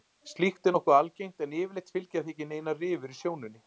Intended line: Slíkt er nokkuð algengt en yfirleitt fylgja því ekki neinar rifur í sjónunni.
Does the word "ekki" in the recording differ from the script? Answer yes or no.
no